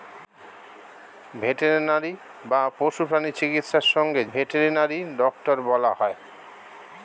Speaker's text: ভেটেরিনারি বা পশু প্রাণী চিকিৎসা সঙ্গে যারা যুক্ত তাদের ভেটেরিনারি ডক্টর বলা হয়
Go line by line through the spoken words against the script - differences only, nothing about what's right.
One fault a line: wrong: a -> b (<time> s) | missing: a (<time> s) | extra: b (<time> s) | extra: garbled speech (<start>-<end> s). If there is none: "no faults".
missing: যারা যুক্ত তাদের (4.2 s)